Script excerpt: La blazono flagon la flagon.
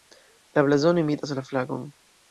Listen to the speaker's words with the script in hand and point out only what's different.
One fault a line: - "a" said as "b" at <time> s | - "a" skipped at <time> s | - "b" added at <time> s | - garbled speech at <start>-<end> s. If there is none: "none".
- "flagon" said as "imitas" at 1.0 s